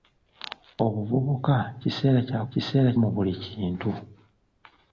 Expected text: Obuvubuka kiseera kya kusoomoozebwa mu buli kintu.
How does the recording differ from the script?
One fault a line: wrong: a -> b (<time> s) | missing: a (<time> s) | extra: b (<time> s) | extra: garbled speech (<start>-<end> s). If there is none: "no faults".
wrong: kusoomoozebwa -> kiseera (2.5 s)